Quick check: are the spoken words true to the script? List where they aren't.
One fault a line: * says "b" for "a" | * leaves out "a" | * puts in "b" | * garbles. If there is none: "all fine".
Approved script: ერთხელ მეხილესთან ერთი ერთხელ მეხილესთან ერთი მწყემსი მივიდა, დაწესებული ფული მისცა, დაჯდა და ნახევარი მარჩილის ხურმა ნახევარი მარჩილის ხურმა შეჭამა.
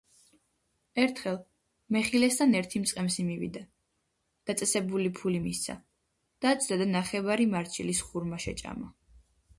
* leaves out "ერთხელ მეხილესთან ერთი"
* leaves out "ნახევარი მარჩილის ხურმა"